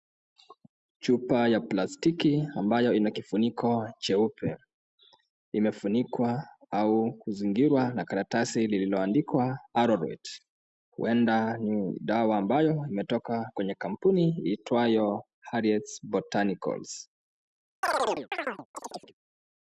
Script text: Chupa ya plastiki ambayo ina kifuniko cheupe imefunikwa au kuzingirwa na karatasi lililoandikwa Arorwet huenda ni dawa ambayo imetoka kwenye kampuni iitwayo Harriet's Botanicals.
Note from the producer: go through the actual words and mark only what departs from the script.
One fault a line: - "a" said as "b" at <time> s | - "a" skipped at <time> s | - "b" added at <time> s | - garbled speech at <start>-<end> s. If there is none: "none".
none